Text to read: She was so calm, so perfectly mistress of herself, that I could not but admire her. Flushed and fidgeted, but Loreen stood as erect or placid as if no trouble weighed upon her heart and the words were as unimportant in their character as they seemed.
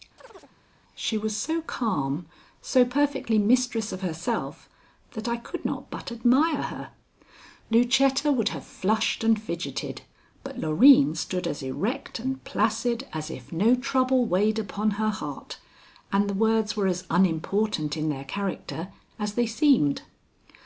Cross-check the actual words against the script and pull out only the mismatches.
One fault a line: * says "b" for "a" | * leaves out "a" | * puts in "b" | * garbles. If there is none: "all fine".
* puts in "Lucetta would have"
* says "and" for "or"